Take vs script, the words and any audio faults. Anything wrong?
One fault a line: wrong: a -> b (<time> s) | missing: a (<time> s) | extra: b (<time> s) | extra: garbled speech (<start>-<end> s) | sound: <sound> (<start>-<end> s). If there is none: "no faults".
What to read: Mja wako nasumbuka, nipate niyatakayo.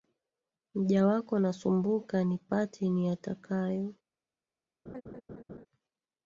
sound: laugh (4.9-5.7 s)